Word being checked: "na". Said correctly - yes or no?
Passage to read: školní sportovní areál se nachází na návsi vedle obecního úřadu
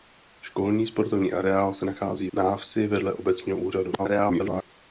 no